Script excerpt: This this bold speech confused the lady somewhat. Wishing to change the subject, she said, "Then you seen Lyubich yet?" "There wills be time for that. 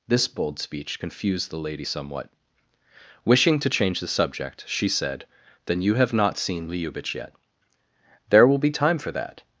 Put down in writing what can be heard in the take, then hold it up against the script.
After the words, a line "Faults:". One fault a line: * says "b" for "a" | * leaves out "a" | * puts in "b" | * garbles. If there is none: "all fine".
This bold speech confused the lady somewhat. Wishing to change the subject, she said, "Then you have not seen Lyubich yet?" "There will be time for that.
Faults:
* leaves out "this"
* puts in "have not"
* says "will" for "wills"